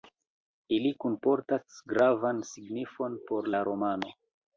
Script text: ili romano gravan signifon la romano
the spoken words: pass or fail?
fail